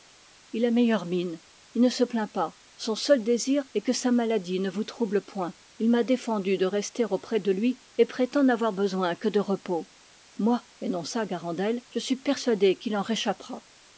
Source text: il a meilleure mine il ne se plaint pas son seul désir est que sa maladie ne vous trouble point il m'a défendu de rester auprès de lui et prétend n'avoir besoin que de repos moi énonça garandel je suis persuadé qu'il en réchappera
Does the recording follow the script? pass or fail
pass